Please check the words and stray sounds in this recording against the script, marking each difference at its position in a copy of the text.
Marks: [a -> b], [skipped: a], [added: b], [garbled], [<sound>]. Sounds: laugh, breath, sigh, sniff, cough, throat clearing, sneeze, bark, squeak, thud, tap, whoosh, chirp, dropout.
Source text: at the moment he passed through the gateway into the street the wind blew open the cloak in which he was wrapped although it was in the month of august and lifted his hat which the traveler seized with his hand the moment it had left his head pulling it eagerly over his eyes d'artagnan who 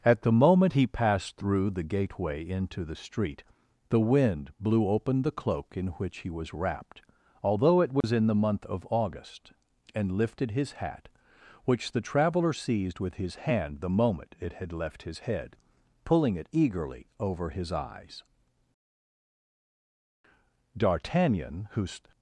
at the moment he passed through the gateway into the street the wind blew open the cloak in which he was wrapped although it was [dropout] in the month of august and lifted his hat which the traveler seized with his hand the moment it had left his head pulling it eagerly over his eyes d'artagnan who